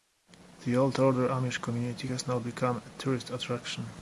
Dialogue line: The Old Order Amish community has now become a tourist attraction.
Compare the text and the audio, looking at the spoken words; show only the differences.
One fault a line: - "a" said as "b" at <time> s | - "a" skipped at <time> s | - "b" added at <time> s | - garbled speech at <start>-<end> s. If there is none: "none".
none